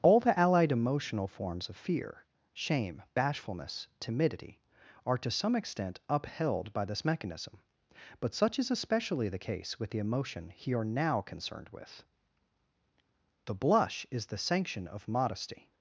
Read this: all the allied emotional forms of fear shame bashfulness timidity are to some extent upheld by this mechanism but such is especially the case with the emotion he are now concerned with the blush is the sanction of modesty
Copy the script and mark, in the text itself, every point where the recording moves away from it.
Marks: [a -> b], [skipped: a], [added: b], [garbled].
all the allied emotional forms of fear shame bashfulness timidity are to some extent upheld by this mechanism but such is especially the case with the emotion he are now concerned with the blush is the sanction of modesty